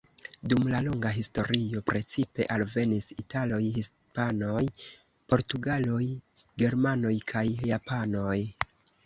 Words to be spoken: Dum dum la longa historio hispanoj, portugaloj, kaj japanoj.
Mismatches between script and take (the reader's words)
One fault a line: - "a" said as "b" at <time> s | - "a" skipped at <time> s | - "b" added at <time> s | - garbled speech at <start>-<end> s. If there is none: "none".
- "dum" skipped at 0.6 s
- "precipe alvenis italoj" added at 1.9 s
- "germanoj" added at 6.6 s